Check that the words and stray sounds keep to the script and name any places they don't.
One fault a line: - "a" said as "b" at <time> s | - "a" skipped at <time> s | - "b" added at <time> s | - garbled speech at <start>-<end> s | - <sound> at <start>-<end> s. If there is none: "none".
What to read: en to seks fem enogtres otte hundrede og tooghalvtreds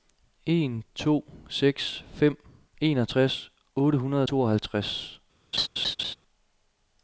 - laugh at 5.5-6.2 s